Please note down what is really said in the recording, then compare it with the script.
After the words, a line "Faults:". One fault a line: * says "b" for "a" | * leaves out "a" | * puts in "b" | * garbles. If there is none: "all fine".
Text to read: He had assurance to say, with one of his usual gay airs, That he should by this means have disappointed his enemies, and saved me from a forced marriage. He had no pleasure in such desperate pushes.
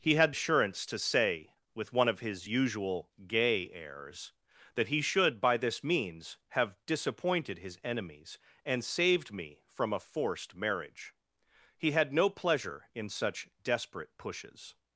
He had assurance to say, with one of his usual gay airs, That he should by this means have disappointed his enemies, and saved me from a forced marriage. He had no pleasure in such desperate pushes.
Faults:
all fine